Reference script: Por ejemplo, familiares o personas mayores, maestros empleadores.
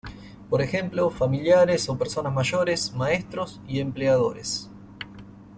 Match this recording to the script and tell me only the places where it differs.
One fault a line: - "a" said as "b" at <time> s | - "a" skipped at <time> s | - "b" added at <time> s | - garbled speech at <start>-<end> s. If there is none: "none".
- "y" added at 3.7 s